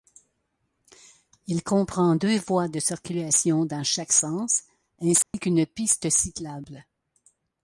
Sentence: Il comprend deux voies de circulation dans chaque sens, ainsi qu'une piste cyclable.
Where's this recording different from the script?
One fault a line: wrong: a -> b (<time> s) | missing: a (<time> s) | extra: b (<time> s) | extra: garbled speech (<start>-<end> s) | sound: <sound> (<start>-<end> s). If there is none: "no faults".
sound: dropout (5.2-5.3 s)